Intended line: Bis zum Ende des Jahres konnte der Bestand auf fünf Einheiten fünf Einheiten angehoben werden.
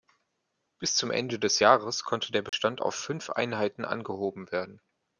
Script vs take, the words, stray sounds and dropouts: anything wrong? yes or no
yes